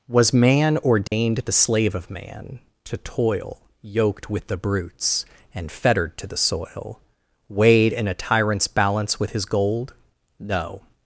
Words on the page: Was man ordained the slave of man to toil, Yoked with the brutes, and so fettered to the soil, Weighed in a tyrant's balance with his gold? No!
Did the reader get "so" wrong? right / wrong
wrong